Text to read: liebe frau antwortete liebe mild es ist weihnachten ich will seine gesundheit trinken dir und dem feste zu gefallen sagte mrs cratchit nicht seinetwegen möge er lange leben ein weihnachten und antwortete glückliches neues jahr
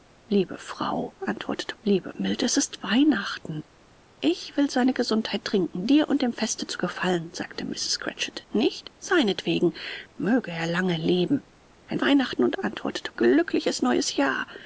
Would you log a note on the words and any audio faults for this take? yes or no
no